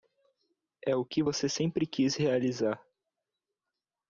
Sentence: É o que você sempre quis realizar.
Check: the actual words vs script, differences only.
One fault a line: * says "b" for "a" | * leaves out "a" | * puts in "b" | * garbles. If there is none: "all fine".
all fine